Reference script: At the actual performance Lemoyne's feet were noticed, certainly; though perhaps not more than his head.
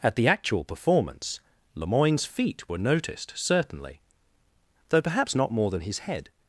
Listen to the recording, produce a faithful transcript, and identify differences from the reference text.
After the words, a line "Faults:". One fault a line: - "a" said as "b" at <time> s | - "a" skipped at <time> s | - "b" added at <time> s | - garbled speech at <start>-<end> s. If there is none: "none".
At the actual performance Lemoyne's feet were noticed, certainly; though perhaps not more than his head.
Faults:
none